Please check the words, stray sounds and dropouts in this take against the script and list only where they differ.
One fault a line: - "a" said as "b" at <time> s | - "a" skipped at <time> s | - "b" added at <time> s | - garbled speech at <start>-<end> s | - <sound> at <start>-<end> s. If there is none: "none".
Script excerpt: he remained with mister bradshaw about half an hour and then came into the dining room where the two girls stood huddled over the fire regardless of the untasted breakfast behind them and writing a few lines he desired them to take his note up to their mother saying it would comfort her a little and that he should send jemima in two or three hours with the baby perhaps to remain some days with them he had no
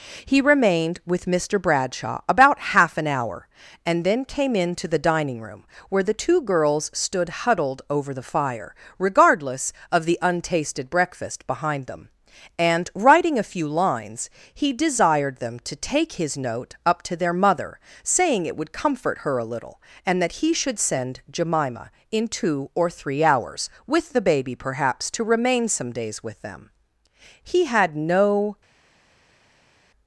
none